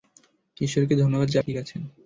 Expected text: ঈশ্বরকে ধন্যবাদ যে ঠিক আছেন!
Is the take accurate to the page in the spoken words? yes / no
yes